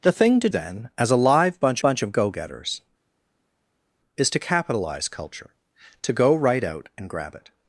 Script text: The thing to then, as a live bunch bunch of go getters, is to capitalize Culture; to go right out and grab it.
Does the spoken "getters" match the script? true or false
true